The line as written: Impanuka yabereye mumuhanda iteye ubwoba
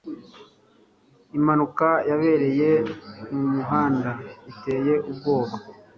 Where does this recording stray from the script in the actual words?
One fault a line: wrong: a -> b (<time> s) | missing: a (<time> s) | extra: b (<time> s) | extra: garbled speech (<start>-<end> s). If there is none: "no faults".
no faults